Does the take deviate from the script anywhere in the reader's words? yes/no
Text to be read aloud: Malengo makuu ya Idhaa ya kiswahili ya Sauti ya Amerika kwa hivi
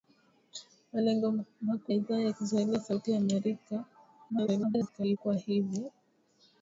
yes